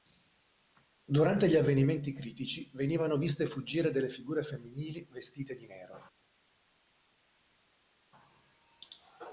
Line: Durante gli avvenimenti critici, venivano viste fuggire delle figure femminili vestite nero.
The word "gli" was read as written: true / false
true